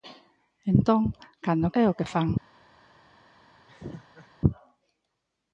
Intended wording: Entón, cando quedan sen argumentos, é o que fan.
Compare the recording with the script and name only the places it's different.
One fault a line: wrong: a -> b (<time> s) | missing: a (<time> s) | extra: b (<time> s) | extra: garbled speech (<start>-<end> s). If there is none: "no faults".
missing: quedan sen argumentos (1.7 s)